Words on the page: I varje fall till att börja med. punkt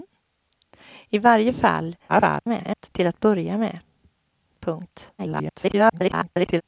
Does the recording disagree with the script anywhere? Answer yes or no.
yes